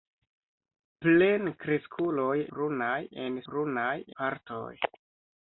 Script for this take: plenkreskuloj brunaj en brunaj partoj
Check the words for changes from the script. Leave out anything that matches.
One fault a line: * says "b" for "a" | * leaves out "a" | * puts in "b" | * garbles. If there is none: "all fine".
all fine